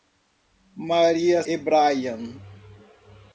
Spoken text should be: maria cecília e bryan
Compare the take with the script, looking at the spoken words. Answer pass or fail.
fail